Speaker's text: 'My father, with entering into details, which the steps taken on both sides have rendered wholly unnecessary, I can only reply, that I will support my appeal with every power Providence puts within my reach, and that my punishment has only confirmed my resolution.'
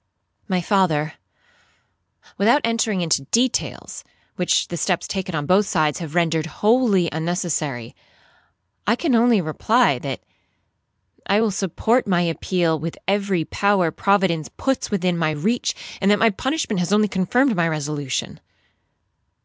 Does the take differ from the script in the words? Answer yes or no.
yes